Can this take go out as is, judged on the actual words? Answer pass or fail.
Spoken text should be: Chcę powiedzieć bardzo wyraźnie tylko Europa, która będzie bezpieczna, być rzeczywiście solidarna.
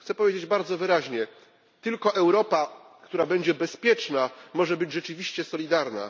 fail